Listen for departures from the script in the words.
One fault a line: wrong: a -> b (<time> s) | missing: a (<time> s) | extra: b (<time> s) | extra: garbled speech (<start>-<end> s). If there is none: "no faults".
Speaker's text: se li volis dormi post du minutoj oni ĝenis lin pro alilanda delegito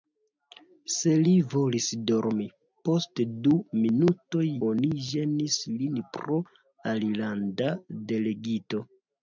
no faults